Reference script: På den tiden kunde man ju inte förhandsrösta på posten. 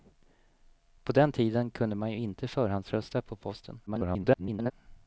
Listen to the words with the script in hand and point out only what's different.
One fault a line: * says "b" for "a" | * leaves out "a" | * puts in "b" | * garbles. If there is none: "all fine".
* garbles